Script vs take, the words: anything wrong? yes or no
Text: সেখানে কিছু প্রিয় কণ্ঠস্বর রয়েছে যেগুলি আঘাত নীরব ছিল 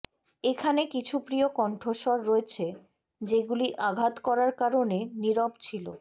yes